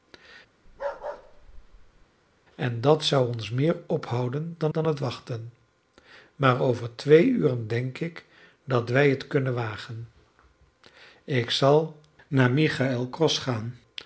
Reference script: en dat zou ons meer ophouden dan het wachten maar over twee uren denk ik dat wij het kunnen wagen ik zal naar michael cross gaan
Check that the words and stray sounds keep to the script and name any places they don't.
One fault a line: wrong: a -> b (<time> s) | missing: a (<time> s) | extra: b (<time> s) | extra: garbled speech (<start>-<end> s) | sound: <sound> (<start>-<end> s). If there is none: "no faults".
sound: bark (0.7-2.1 s)
extra: dan (4.7 s)